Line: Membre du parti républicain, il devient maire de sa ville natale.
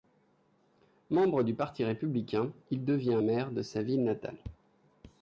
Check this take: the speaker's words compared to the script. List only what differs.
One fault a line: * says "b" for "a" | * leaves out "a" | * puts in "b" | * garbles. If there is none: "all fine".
all fine